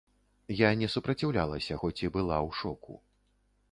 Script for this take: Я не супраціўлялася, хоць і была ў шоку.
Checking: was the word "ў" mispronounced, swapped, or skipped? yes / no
no